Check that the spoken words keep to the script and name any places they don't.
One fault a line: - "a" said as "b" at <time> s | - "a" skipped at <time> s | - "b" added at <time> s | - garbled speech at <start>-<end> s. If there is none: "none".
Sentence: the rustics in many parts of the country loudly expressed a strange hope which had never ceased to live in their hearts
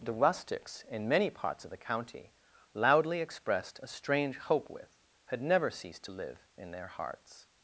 - "country" said as "county" at 1.8 s
- "which" said as "with" at 4.7 s